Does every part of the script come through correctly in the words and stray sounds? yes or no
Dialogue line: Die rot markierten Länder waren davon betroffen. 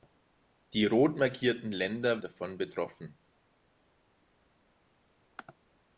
no